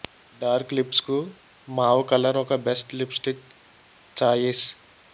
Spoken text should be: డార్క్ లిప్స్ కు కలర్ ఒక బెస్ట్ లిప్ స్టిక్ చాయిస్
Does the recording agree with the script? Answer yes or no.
no